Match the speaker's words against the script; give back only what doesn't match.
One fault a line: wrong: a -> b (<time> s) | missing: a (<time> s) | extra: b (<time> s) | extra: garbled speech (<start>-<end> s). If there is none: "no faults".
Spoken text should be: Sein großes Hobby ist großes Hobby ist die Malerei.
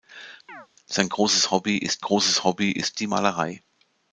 no faults